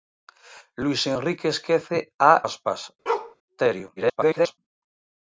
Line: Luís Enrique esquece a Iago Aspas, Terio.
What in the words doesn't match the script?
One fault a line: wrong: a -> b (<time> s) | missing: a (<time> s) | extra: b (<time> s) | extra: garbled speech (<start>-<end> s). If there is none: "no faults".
missing: Iago (2.3 s)
extra: garbled speech (4.0-4.6 s)